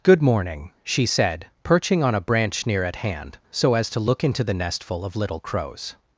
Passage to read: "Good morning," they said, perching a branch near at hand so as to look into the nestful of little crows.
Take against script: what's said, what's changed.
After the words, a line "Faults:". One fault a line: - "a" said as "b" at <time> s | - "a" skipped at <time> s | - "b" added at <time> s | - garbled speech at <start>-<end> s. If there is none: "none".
"Good morning," she said, perching on a branch near at hand so as to look into the nestful of little crows.
Faults:
- "they" said as "she" at 0.8 s
- "on" added at 2.0 s